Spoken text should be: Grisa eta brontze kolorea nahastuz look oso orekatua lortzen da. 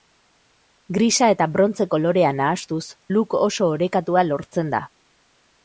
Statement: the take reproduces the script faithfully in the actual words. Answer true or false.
true